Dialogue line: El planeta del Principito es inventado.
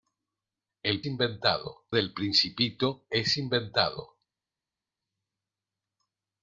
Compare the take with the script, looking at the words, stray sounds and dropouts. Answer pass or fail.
fail